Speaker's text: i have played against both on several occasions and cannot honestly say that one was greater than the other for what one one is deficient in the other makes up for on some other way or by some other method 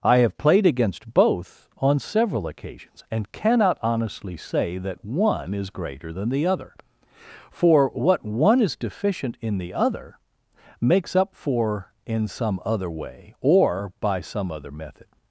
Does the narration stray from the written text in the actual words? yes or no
yes